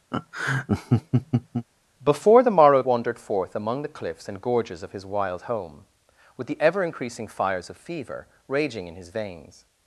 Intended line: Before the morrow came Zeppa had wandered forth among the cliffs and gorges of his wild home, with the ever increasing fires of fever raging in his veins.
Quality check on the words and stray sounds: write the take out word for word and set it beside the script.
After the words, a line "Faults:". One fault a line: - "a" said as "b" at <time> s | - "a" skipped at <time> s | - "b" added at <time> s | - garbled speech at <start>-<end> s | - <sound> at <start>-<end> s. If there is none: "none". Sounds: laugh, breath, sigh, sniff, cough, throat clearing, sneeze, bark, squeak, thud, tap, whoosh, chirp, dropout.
Before the morrow wandered forth among the cliffs and gorges of his wild home, with the ever increasing fires of fever raging in his veins.
Faults:
- laugh at 0.1-1.7 s
- "came Zeppa had" skipped at 2.8 s